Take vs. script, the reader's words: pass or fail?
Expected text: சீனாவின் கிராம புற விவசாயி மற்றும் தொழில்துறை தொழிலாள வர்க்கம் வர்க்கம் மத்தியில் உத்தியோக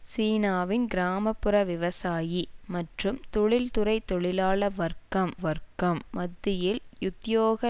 pass